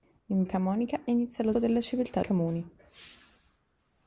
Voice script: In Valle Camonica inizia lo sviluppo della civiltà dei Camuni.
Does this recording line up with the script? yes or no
no